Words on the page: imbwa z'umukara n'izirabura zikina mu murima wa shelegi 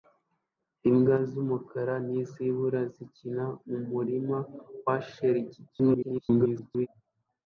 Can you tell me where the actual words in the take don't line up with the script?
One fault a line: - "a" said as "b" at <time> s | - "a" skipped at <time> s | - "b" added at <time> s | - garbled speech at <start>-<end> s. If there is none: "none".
- garbled speech at 5.7-6.9 s